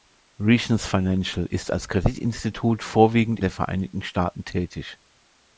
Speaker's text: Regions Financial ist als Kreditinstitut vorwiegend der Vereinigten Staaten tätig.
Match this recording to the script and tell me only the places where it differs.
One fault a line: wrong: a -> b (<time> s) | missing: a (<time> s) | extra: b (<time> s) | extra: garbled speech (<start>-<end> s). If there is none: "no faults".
no faults